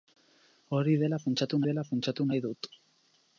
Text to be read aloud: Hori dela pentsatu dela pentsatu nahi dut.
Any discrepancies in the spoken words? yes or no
no